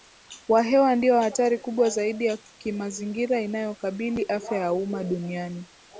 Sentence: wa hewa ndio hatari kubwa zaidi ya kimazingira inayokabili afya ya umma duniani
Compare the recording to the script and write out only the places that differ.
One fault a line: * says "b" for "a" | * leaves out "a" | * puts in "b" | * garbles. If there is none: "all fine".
all fine